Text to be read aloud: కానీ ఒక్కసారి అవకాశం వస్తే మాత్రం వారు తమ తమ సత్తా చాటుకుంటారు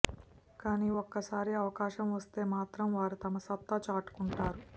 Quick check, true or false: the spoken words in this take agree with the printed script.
false